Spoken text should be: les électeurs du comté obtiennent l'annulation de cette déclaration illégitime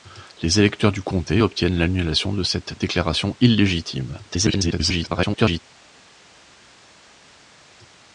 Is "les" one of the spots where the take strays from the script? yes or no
no